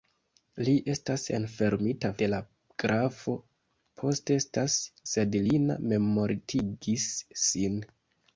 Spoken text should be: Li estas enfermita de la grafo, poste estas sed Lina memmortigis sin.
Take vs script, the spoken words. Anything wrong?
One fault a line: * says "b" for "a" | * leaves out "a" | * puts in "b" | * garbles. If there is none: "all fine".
all fine